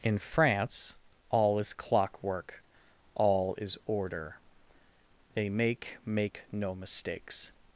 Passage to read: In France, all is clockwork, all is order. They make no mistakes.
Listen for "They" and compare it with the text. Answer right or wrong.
right